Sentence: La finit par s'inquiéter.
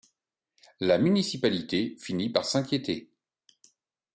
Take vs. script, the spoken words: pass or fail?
fail